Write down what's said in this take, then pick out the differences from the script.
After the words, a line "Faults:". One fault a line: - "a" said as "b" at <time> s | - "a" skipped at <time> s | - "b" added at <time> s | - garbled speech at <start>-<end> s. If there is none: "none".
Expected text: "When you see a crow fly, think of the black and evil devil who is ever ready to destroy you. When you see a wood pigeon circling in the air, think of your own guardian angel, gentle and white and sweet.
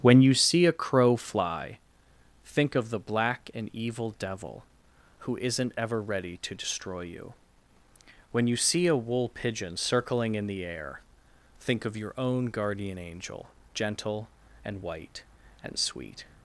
"When you see a crow fly, think of the black and evil devil who isn't ever ready to destroy you. When you see a wool pigeon circling in the air, think of your own guardian angel, gentle and white and sweet.
Faults:
- "is" said as "isn't" at 5.4 s
- "wood" said as "wool" at 9.0 s